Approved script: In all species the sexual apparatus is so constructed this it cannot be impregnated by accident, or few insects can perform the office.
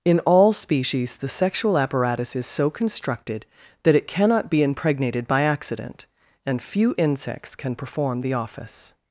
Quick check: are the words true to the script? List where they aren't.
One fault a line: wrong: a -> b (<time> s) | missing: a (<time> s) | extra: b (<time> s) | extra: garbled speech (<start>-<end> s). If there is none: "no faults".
wrong: this -> that (3.8 s)
wrong: or -> and (6.4 s)